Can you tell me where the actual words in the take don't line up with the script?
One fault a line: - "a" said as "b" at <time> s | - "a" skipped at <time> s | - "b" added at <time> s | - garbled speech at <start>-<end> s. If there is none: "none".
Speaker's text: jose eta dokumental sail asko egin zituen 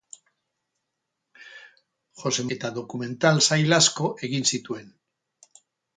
none